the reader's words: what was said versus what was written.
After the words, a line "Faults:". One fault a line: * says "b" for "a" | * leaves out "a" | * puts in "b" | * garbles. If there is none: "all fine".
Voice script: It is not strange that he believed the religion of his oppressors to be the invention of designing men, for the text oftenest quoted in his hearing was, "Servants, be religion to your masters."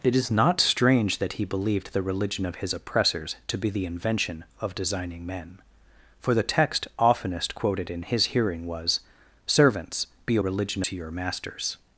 It is not strange that he believed the religion of his oppressors to be the invention of designing men, for the text oftenest quoted in his hearing was, "Servants, be religion to your masters."
Faults:
all fine